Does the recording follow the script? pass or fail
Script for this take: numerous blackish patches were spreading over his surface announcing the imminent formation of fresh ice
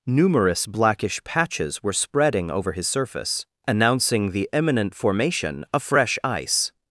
pass